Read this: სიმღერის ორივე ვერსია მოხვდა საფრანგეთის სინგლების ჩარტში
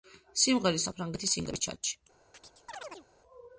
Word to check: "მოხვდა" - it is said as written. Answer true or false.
false